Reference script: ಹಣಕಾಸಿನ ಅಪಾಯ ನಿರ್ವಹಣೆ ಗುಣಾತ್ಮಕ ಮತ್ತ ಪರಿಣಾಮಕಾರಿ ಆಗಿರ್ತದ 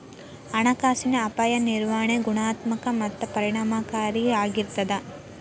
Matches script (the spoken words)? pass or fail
pass